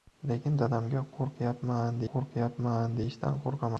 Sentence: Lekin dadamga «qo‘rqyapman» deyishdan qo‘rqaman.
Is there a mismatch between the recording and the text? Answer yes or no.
yes